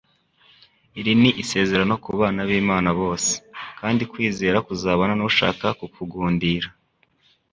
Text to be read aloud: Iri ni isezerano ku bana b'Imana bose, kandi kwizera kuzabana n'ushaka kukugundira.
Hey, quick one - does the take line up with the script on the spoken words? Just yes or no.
yes